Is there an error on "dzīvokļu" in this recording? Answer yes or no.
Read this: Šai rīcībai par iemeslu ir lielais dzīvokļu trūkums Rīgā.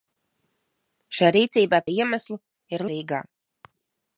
yes